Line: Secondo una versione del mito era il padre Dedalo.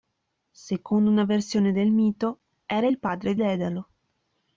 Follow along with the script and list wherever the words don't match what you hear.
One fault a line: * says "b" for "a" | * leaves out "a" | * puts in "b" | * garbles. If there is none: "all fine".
all fine